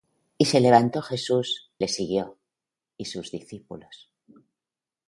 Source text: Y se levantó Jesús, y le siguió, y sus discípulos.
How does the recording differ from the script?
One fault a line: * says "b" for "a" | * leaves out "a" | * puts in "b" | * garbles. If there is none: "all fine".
* leaves out "y"